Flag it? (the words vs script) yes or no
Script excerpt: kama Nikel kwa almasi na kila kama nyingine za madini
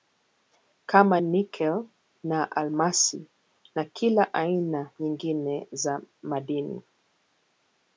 yes